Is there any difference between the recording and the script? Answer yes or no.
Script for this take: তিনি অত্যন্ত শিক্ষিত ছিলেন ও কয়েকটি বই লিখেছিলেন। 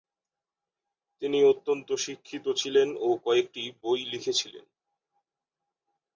no